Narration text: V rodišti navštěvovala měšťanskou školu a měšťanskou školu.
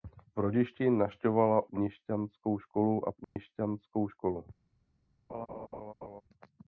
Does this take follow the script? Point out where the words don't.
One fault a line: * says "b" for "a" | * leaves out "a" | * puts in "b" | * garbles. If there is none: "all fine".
all fine